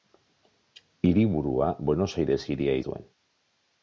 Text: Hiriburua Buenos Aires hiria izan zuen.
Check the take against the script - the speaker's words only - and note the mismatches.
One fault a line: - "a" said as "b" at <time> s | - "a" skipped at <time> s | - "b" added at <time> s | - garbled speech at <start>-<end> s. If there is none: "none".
- "izan" skipped at 2.8 s